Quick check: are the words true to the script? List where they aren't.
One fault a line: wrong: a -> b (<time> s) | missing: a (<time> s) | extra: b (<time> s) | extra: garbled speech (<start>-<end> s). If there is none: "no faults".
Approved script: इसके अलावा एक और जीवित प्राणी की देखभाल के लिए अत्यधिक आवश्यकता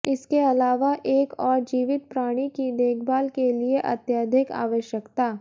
no faults